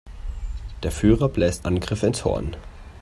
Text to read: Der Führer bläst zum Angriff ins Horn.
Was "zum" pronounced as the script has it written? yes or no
no